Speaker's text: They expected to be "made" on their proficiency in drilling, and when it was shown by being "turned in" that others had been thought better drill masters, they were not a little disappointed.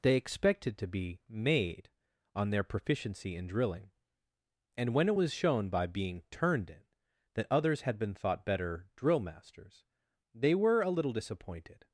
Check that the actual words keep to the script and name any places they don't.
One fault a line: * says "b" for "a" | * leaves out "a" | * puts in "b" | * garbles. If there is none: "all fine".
* leaves out "not"